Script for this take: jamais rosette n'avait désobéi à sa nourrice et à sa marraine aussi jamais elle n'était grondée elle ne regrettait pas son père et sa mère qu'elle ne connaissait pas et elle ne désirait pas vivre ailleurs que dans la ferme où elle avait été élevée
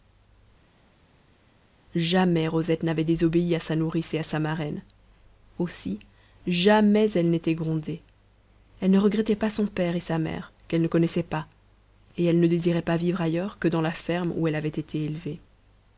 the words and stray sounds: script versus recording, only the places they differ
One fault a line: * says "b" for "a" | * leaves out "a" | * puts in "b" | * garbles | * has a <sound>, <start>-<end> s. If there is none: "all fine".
all fine